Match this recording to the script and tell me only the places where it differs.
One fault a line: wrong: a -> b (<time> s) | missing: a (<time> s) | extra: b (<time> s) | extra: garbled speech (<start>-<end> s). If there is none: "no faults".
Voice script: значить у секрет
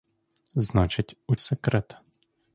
no faults